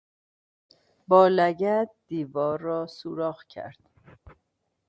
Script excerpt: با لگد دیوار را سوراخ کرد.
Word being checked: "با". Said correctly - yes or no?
yes